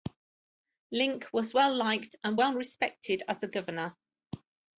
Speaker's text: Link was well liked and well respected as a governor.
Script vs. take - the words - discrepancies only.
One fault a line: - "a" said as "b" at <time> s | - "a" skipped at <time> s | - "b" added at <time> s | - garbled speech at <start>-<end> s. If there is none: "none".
none